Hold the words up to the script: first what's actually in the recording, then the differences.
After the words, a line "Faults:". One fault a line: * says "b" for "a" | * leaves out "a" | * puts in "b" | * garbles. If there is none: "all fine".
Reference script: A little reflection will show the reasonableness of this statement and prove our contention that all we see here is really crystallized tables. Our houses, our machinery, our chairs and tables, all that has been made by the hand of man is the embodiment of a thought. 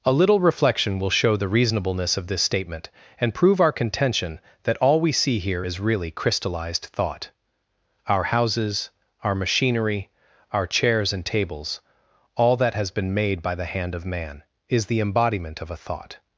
A little reflection will show the reasonableness of this statement and prove our contention that all we see here is really crystallized thought. Our houses, our machinery, our chairs and tables, all that has been made by the hand of man is the embodiment of a thought.
Faults:
* says "thought" for "tables"